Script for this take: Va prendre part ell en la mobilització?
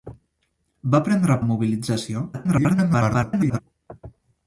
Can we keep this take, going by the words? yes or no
no